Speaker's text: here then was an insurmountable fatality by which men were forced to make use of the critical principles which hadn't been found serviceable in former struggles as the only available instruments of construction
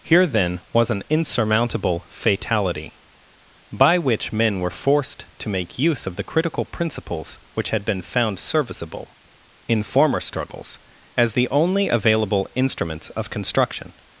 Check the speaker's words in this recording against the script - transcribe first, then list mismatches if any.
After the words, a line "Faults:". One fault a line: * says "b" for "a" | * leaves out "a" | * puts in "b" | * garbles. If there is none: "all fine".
here then was an insurmountable fatality by which men were forced to make use of the critical principles which had been found serviceable in former struggles as the only available instruments of construction
Faults:
* says "had" for "hadn't"